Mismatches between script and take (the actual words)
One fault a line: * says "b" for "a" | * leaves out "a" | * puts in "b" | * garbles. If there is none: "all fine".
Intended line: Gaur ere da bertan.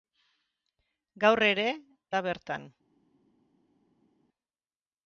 all fine